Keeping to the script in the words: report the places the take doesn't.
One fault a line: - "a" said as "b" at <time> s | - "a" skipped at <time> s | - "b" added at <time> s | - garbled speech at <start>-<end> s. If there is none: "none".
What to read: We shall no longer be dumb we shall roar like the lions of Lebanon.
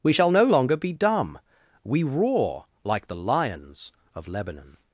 - "shall" skipped at 2.0 s